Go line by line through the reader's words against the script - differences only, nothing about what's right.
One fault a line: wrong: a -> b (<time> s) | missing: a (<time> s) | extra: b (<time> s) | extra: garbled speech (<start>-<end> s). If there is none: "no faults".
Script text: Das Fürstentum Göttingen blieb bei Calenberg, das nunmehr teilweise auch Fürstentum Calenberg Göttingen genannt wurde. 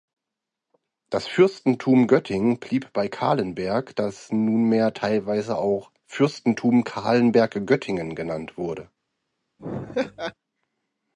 no faults